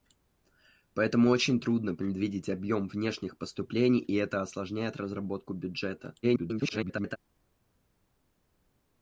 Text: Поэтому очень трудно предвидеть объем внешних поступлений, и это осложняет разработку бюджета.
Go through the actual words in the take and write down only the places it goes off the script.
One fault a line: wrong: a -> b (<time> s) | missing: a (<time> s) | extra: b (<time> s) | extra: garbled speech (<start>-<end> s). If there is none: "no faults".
extra: garbled speech (6.2-7.2 s)